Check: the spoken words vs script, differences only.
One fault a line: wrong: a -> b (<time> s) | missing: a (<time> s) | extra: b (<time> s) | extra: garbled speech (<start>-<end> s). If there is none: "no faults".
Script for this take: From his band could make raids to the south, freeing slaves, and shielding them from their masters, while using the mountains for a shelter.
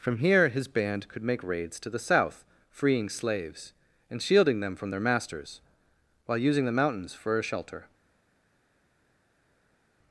extra: here (0.2 s)